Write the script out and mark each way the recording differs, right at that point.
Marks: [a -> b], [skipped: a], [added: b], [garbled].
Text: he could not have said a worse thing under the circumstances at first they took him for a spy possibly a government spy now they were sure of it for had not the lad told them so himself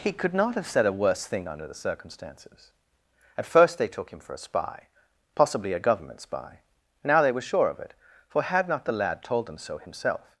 he could not have said a worse thing under the circumstances at first they took him for a spy possibly a government spy now they were sure of it for had not the lad told them so himself